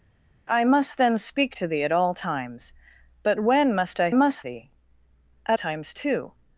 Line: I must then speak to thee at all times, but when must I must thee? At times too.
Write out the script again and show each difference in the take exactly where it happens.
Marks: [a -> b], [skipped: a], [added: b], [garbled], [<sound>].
I must then speak to thee at all times, but when must I must thee? At times too.